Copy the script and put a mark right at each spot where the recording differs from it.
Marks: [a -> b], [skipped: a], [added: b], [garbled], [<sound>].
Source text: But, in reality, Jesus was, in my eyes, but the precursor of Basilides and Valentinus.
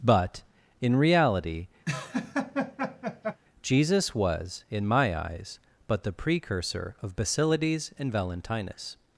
But, in reality, [laugh] Jesus was, in my eyes, but the precursor of Basilides and Valentinus.